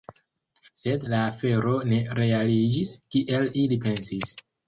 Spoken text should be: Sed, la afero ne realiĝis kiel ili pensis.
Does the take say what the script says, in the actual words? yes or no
yes